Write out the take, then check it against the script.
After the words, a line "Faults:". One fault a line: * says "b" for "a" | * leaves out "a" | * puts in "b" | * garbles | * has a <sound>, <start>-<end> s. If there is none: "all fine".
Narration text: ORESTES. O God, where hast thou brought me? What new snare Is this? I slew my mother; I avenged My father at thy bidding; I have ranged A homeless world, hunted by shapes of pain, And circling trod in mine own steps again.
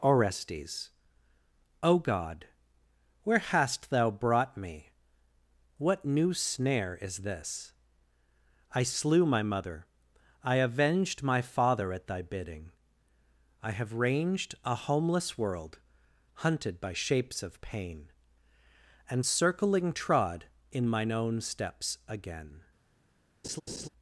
ORESTES. O God, where hast thou brought me? What new snare Is this? I slew my mother; I avenged My father at thy bidding; I have ranged A homeless world, hunted by shapes of pain, And circling trod in mine own steps again.
Faults:
* has a laugh, 23.4-23.9 s